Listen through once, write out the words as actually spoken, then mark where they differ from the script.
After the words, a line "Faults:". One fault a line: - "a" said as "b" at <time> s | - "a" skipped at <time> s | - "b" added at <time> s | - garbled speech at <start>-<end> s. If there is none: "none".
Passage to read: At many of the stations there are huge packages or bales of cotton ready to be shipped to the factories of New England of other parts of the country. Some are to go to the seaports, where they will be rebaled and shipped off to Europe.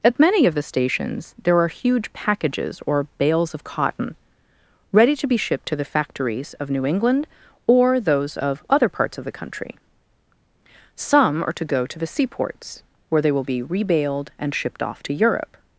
At many of the stations there are huge packages or bales of cotton ready to be shipped to the factories of New England or those of other parts of the country. Some are to go to the seaports, where they will be rebaled and shipped off to Europe.
Faults:
- "or those" added at 7.7 s